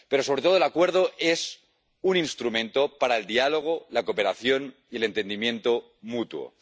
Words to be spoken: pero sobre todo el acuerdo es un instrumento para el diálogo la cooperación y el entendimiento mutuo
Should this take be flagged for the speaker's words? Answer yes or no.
no